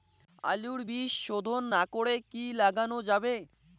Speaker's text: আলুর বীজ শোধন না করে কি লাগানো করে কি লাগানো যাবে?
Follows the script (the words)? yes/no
no